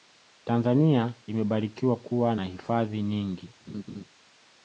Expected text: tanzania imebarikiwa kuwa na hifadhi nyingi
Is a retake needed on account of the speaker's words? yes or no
no